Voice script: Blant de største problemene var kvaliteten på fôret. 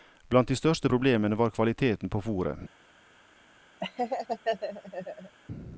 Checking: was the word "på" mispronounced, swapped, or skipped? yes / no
no